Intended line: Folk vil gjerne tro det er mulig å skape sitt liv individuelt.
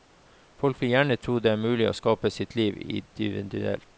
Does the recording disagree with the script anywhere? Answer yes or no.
no